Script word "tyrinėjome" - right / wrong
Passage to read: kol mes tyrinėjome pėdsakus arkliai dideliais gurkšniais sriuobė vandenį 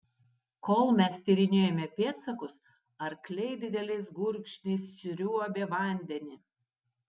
right